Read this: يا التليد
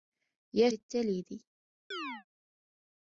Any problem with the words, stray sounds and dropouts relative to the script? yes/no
yes